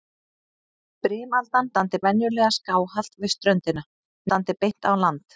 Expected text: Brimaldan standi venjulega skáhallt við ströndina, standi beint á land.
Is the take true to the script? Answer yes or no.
yes